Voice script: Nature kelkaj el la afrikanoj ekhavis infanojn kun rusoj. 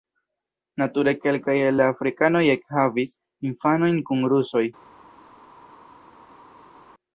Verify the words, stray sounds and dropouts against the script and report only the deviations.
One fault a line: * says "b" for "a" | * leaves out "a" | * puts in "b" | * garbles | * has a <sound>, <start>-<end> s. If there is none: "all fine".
all fine